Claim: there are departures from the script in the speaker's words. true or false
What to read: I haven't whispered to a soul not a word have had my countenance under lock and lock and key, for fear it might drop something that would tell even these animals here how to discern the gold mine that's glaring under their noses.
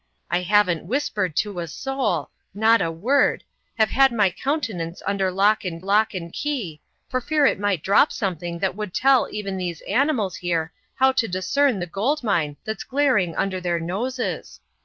false